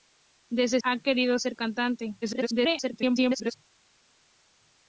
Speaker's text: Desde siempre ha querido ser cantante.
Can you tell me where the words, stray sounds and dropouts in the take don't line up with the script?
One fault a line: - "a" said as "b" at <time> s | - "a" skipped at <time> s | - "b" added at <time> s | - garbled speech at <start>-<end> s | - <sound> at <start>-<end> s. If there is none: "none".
- "siempre" skipped at 0.8 s
- garbled speech at 2.2-3.5 s